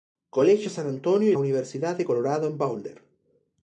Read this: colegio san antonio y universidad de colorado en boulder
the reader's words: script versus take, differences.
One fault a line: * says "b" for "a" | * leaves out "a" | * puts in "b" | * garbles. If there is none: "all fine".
all fine